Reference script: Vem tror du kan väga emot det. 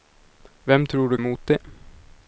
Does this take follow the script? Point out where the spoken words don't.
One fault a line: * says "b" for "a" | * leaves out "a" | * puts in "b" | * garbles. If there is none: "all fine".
* leaves out "kan väga"